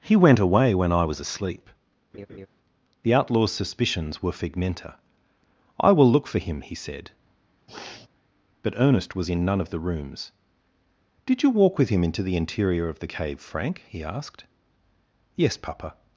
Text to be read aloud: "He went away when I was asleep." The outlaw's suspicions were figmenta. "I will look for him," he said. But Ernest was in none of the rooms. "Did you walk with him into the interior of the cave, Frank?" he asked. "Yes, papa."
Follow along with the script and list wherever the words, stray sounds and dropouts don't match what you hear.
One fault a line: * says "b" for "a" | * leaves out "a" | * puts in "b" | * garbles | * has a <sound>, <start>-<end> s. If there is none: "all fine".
* has a laugh, 2.1-2.5 s
* has a sniff, 7.7-8.1 s